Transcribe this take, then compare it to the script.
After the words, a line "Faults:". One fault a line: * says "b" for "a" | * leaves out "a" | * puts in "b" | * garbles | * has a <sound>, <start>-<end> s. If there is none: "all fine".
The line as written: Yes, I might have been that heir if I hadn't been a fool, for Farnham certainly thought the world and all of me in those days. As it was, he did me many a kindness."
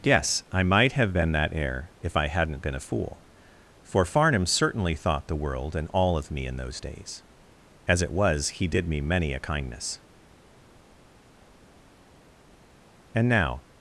Yes, I might have been that heir if I hadn't been a fool, for Farnham certainly thought the world and all of me in those days. As it was, he did me many a kindness." "And now
Faults:
* puts in "And now"